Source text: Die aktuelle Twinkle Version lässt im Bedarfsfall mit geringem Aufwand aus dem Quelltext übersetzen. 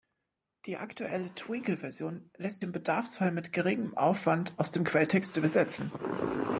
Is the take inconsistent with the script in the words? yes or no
no